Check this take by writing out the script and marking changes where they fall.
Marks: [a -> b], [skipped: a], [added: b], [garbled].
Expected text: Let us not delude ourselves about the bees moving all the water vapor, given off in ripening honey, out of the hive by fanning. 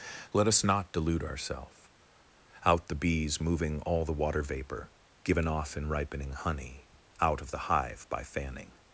Let us not delude ourselves [about -> out] the bees moving all the water vapor, given off in ripening honey, out of the hive by fanning.